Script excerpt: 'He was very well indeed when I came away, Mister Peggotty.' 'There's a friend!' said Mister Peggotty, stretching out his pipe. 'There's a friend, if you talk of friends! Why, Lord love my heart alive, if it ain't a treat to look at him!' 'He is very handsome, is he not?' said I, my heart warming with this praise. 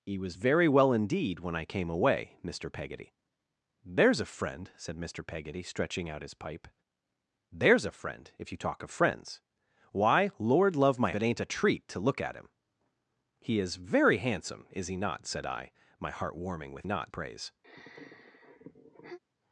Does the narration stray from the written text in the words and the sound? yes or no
yes